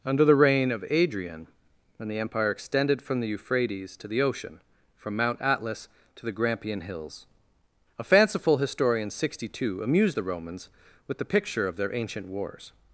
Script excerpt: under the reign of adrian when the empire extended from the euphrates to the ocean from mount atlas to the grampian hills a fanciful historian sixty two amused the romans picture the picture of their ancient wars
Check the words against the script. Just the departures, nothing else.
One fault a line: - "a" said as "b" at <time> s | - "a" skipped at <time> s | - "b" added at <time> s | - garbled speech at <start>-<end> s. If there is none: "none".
- "picture" said as "with" at 11.1 s